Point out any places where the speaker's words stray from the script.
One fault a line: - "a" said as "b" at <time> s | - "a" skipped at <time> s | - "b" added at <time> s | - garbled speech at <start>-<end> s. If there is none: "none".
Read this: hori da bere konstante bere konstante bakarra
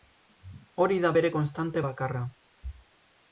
- "bere konstante" skipped at 1.8 s